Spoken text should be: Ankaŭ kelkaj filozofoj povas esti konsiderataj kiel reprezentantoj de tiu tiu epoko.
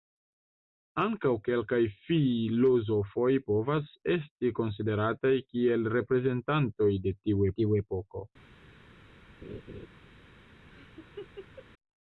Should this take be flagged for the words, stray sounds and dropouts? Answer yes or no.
yes